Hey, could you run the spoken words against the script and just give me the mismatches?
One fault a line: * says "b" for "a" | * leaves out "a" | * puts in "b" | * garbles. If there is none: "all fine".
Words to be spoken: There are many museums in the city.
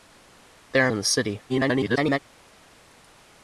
* leaves out "many museums"
* garbles